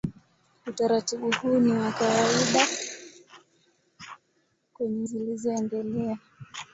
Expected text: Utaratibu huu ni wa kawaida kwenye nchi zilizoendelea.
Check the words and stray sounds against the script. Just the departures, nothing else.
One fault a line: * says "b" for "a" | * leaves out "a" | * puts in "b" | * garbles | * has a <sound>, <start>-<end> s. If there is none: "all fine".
* leaves out "nchi"